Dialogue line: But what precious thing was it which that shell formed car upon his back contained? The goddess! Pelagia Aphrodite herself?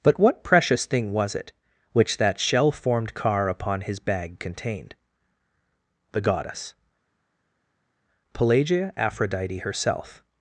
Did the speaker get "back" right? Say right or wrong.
wrong